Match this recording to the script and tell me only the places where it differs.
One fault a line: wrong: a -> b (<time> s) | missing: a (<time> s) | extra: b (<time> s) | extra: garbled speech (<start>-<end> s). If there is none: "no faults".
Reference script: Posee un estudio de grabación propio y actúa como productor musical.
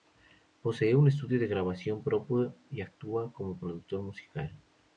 no faults